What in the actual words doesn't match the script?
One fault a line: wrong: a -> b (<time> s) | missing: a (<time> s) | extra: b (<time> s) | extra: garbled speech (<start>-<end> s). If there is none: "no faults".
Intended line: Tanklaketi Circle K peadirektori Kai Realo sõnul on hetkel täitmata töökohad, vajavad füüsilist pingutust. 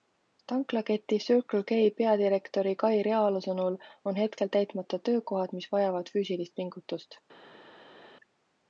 extra: mis (5.6 s)